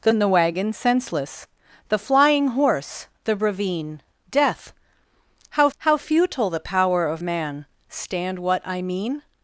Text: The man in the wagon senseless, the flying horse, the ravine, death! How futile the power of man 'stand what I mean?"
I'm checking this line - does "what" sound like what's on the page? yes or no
yes